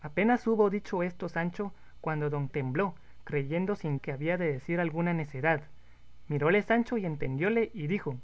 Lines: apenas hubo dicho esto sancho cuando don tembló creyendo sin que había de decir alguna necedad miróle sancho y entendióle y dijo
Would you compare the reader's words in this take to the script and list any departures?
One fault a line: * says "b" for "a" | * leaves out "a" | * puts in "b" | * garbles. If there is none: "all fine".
all fine